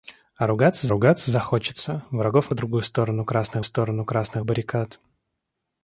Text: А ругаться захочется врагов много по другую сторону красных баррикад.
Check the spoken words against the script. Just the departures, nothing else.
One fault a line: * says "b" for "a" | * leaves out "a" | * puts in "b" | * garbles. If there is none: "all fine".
* puts in "ругаться"
* leaves out "много"
* puts in "сторону красных"